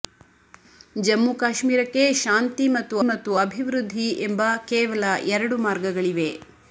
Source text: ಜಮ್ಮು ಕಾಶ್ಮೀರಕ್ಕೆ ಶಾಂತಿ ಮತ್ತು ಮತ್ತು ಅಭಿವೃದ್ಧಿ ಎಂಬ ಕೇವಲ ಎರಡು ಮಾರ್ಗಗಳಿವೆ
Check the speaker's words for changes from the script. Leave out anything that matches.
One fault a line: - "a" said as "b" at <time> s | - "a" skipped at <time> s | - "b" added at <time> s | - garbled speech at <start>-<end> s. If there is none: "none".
none